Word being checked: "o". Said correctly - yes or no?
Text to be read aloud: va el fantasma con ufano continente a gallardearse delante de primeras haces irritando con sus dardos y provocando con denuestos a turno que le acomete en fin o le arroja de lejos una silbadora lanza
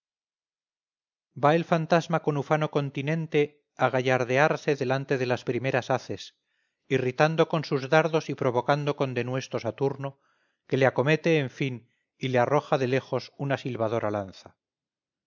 no